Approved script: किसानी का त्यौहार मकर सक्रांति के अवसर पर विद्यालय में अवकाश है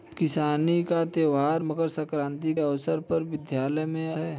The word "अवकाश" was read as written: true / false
false